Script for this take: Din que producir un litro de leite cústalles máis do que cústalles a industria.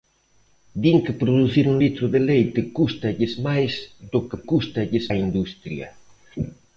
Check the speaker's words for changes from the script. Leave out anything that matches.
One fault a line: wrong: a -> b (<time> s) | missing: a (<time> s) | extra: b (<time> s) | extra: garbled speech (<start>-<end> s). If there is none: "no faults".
no faults